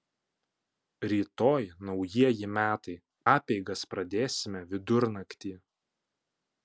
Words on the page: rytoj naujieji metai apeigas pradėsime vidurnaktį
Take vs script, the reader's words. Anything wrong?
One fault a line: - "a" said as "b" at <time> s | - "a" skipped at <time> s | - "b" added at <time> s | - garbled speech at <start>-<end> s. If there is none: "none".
none